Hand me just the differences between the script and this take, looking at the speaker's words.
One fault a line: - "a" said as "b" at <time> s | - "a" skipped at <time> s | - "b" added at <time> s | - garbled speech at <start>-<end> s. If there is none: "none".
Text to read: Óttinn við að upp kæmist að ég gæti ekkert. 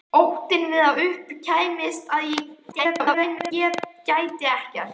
- garbled speech at 2.7-3.5 s